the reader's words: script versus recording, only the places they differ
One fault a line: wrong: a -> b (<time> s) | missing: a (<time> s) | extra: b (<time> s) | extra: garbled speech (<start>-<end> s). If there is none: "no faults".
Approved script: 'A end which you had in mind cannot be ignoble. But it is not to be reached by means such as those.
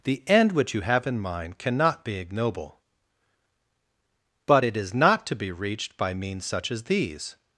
wrong: A -> The (0.0 s)
wrong: had -> have (0.8 s)
wrong: those -> these (6.8 s)